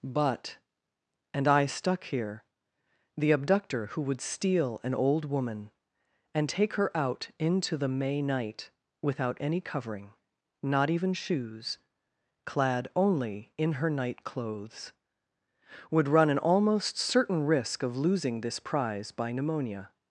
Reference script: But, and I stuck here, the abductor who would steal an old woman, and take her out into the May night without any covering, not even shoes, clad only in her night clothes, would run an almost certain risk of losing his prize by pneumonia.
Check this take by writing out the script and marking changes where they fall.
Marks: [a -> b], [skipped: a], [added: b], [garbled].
But, and I stuck here, the abductor who would steal an old woman, and take her out into the May night without any covering, not even shoes, clad only in her night clothes, would run an almost certain risk of losing [his -> this] prize by pneumonia.